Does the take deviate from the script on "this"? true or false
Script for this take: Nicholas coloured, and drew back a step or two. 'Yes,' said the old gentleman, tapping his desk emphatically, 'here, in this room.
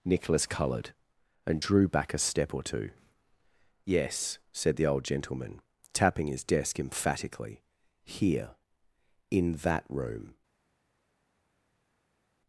true